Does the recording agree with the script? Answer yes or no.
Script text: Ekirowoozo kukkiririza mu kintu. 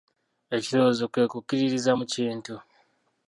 no